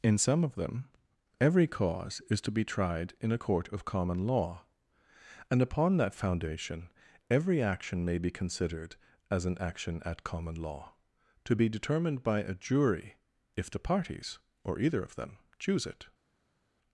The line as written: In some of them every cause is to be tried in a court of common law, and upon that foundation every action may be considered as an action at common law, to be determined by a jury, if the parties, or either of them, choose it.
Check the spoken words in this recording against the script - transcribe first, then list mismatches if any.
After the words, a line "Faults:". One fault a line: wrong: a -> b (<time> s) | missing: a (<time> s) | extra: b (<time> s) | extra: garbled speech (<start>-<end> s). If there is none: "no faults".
In some of them every cause is to be tried in a court of common law, and upon that foundation every action may be considered as an action at common law, to be determined by a jury, if the parties, or either of them, choose it.
Faults:
no faults